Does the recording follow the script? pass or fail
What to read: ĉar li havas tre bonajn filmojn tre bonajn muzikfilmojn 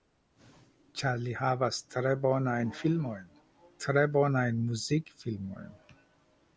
pass